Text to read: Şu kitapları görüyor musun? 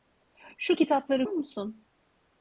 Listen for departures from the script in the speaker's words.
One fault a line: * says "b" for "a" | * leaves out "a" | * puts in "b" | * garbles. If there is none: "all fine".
* leaves out "görüyor"